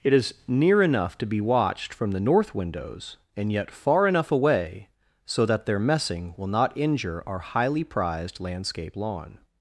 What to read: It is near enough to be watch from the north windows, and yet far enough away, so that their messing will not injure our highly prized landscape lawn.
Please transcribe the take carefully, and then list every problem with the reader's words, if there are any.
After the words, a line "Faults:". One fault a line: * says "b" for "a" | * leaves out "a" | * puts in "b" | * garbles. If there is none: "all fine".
It is near enough to be watched from the north windows, and yet far enough away, so that their messing will not injure our highly prized landscape lawn.
Faults:
* says "watched" for "watch"